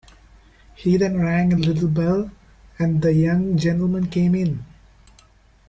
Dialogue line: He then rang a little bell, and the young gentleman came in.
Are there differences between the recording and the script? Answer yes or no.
no